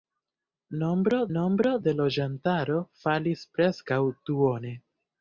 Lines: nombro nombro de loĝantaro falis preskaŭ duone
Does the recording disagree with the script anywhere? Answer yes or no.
no